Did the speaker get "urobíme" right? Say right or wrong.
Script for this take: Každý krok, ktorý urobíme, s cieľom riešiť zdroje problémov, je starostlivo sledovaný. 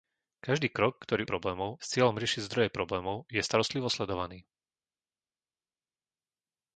wrong